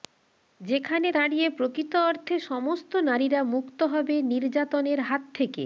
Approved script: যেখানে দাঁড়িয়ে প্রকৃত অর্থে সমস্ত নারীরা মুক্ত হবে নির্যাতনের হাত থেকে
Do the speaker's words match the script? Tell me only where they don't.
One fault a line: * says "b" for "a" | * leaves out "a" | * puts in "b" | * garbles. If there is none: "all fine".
all fine